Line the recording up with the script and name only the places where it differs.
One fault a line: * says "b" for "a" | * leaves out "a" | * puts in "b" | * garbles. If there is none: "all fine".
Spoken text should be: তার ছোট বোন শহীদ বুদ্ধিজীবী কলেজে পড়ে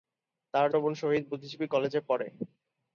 * leaves out "ছোট"